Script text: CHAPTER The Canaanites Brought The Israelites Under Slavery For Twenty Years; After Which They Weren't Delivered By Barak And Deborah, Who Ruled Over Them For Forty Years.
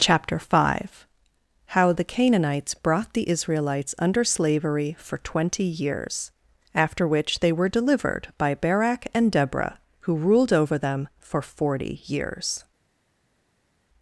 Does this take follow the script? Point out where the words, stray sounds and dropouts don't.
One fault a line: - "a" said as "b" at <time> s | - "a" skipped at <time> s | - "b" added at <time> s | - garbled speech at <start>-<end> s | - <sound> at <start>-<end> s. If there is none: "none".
- "five How" added at 0.4 s
- "Weren't" said as "Were" at 7.5 s